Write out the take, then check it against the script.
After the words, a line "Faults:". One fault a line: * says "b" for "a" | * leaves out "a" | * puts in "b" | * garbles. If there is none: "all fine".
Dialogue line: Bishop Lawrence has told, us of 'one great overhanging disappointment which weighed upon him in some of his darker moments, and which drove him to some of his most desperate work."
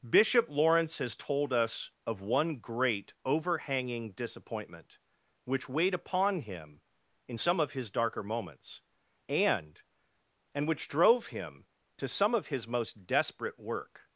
Bishop Lawrence has told, us of 'one great overhanging disappointment which weighed upon him in some of his darker moments, and and which drove him to some of his most desperate work."
Faults:
* puts in "and"